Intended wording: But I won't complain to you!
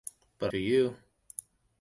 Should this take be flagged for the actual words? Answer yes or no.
yes